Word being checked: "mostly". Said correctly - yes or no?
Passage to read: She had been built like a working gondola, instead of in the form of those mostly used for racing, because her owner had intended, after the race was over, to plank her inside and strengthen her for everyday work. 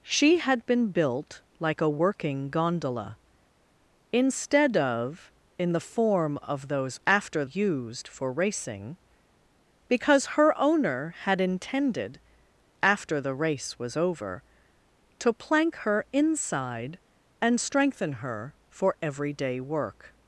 no